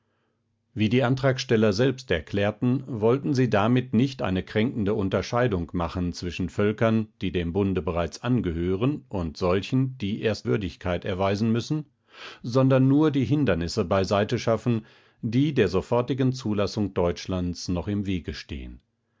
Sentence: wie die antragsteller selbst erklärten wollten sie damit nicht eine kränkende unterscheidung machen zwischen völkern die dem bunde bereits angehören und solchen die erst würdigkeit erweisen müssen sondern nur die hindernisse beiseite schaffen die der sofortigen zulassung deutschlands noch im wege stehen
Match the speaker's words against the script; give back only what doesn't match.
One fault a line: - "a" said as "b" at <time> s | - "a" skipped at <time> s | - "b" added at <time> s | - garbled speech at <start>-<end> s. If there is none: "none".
none